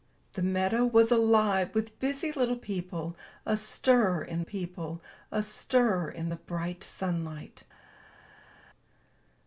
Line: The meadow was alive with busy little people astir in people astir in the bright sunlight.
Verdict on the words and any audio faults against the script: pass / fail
pass